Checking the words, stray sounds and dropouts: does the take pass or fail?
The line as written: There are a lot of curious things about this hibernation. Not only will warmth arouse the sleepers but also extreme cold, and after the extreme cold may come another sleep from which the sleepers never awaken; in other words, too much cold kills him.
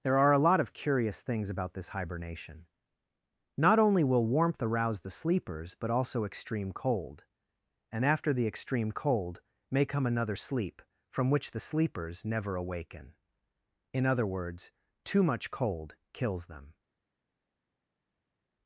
fail